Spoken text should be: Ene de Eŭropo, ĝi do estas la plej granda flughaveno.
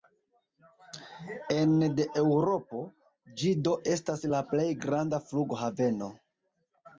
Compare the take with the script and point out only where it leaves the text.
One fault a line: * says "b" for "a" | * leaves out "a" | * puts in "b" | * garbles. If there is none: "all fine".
all fine